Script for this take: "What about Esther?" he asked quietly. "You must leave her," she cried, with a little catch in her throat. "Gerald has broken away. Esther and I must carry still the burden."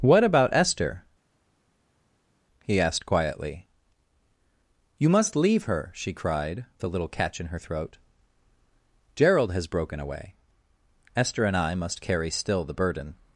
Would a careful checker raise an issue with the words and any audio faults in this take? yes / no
yes